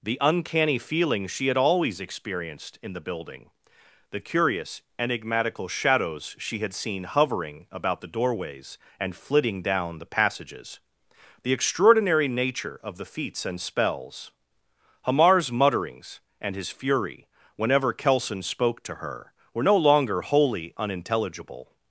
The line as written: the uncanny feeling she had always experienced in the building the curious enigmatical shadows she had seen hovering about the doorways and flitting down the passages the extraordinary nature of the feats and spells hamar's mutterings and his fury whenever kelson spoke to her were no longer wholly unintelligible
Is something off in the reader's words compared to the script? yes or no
no